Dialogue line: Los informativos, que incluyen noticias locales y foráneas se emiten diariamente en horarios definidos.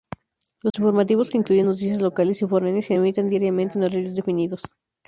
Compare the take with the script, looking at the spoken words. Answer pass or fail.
pass